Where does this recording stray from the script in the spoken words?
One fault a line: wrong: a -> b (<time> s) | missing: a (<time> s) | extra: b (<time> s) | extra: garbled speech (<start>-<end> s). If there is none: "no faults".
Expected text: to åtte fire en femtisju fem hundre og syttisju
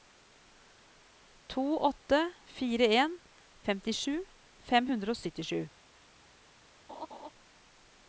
no faults